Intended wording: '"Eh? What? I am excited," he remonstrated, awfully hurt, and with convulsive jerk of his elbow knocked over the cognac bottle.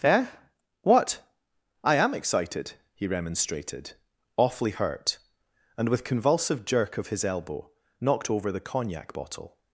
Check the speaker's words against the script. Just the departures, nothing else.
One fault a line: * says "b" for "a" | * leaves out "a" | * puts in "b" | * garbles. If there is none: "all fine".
all fine